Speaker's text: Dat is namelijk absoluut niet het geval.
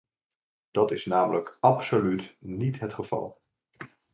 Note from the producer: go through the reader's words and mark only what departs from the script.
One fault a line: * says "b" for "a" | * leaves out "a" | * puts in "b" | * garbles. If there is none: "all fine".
all fine